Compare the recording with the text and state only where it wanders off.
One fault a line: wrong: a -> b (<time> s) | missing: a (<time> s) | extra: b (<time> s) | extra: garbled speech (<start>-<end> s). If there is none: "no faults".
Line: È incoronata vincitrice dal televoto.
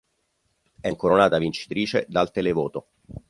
no faults